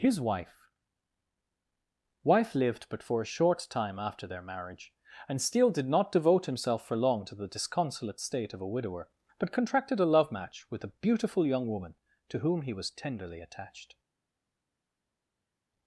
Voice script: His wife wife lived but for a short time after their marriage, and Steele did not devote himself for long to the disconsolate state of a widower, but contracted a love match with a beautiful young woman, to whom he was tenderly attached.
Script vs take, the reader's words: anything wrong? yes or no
no